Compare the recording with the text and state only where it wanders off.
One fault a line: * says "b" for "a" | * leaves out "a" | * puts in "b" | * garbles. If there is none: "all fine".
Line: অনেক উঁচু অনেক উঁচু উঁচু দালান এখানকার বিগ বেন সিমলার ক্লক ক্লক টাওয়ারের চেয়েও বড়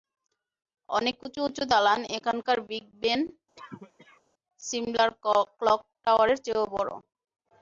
* leaves out "অনেক"
* leaves out "উঁচু"
* leaves out "ক্লক"